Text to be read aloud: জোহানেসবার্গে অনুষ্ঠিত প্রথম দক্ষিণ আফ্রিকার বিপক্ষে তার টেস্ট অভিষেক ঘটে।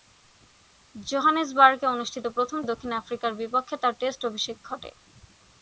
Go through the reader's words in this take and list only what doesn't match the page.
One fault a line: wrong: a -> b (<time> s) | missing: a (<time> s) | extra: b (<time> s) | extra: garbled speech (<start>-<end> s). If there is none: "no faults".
no faults